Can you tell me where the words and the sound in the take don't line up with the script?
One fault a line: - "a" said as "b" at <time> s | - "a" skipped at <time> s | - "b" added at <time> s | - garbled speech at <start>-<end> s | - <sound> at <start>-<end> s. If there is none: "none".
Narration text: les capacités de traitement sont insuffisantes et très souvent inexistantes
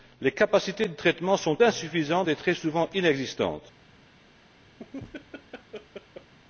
- laugh at 4.8-6.3 s